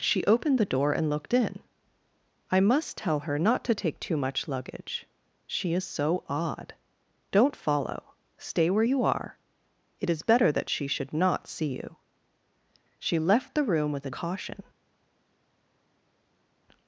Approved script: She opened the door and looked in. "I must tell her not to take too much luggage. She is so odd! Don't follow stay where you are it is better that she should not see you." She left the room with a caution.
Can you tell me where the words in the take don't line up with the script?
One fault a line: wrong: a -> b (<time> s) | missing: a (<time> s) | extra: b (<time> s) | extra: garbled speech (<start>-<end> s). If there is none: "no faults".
no faults